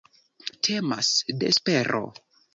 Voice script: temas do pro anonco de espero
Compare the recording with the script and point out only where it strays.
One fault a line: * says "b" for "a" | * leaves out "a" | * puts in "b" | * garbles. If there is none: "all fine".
* leaves out "do pro anonco"